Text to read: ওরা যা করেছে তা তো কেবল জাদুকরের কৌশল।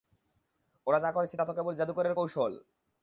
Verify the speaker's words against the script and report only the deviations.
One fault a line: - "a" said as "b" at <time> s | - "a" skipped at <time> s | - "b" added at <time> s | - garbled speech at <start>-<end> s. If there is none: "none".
none